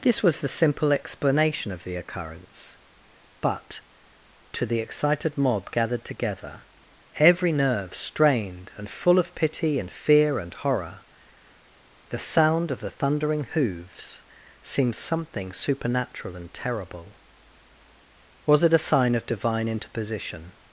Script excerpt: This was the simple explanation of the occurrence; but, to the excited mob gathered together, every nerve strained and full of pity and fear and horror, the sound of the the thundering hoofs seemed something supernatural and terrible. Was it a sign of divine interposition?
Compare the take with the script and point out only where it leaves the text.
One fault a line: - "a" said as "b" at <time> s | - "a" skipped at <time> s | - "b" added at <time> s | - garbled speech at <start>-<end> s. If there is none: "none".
- "the" skipped at 12.9 s